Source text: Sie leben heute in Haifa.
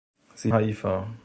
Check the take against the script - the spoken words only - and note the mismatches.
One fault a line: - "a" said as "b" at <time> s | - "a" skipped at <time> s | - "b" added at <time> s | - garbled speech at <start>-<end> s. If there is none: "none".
- "leben heute in" skipped at 0.5 s